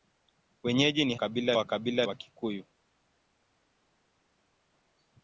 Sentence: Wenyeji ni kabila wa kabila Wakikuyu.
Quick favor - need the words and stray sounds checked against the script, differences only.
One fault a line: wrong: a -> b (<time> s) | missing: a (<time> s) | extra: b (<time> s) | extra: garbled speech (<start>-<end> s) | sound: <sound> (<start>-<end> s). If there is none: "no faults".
no faults